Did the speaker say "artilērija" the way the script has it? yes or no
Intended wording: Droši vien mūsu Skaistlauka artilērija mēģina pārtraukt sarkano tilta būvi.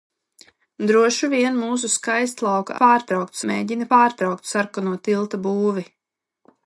no